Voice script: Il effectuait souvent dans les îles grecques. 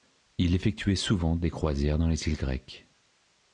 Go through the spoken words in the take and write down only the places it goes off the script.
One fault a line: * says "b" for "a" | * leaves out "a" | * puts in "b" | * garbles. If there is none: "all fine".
* puts in "des croisières"